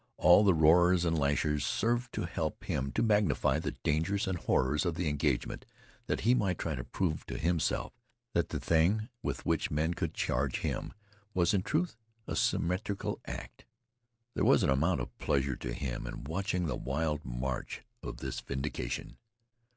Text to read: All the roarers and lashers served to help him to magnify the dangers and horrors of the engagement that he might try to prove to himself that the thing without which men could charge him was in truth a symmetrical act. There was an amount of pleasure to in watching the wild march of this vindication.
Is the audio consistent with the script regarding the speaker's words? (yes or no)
no